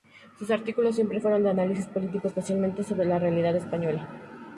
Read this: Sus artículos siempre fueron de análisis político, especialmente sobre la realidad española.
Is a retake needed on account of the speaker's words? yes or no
no